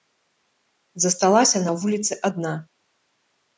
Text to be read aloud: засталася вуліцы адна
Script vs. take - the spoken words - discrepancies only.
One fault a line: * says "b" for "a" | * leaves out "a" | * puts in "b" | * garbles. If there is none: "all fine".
* puts in "на"